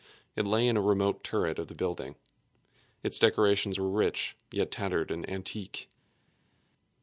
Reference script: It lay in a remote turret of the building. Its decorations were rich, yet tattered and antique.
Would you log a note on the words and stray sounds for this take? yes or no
no